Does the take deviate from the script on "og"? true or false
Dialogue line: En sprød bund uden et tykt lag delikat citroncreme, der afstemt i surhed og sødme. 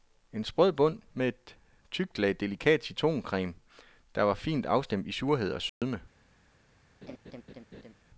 false